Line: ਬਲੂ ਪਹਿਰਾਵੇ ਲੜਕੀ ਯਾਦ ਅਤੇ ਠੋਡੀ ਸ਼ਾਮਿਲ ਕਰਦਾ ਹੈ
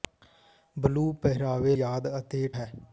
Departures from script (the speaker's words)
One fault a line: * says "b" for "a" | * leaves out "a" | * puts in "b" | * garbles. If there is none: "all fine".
* leaves out "ਲੜਕੀ"
* leaves out "ਠੋਡੀ ਸ਼ਾਮਿਲ ਕਰਦਾ"